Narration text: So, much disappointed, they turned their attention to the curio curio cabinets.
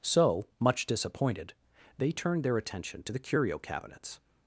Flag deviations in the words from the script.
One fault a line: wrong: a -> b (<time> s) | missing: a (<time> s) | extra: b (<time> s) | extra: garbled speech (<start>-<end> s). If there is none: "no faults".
missing: curio (3.6 s)